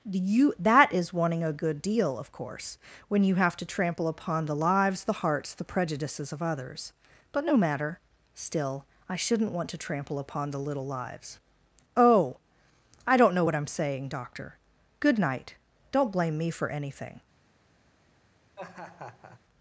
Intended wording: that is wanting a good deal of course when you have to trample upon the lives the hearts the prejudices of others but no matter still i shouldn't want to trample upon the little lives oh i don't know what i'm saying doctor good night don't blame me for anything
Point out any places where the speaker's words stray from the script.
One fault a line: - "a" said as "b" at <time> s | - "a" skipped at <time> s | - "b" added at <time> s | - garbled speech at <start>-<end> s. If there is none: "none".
- "you" added at 0.0 s